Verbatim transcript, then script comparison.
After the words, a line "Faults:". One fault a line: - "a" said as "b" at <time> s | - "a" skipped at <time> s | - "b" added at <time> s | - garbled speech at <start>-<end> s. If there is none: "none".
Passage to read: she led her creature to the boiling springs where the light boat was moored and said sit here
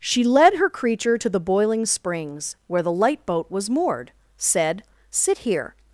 she led her creature to the boiling springs where the light boat was moored said sit here
Faults:
- "and" skipped at 4.1 s